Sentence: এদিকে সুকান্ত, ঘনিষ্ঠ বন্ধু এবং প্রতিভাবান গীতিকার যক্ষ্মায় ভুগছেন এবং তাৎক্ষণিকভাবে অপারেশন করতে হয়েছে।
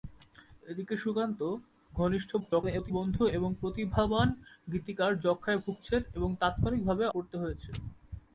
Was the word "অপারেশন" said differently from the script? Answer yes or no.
yes